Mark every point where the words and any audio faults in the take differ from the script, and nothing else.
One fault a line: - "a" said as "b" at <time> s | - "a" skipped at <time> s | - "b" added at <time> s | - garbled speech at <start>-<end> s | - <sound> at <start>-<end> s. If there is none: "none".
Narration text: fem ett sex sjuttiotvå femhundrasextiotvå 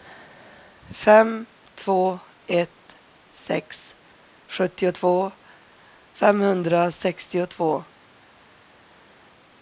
- "två" added at 1.8 s